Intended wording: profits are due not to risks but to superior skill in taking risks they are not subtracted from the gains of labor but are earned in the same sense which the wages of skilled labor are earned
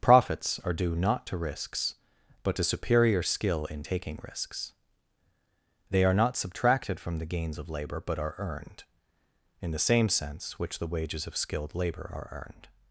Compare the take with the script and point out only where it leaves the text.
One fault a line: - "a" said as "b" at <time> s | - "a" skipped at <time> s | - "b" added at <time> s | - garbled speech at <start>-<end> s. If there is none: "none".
none